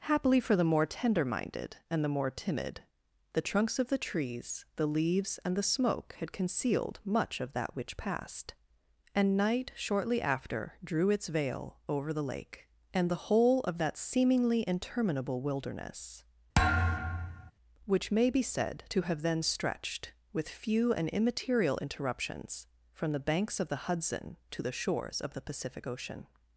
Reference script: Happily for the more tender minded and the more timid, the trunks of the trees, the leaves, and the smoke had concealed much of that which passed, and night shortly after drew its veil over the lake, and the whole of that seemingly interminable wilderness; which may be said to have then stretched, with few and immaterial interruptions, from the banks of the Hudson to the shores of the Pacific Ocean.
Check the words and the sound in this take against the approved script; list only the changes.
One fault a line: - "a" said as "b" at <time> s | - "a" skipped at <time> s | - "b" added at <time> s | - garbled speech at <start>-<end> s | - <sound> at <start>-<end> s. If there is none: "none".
- thud at 16.5-17.5 s